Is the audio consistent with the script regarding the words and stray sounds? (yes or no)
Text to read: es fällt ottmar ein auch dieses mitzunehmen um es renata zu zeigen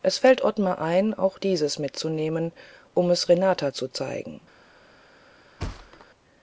no